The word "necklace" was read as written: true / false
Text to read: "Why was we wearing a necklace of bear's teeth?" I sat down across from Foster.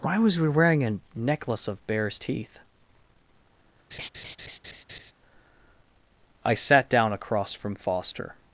true